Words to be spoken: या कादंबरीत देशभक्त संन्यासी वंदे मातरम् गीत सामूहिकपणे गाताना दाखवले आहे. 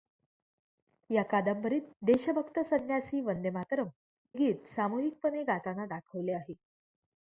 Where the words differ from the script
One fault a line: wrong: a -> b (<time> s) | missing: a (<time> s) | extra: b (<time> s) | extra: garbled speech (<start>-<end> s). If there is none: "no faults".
no faults